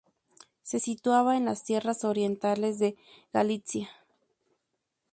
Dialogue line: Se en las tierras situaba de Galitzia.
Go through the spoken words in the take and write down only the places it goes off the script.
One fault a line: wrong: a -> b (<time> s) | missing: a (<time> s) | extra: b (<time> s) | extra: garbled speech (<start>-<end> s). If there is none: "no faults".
extra: situaba (0.8 s)
wrong: situaba -> orientales (2.0 s)